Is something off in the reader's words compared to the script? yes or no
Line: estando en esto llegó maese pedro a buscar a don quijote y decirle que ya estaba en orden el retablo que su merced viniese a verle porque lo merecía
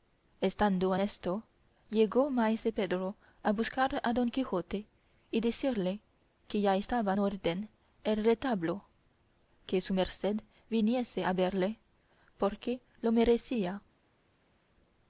yes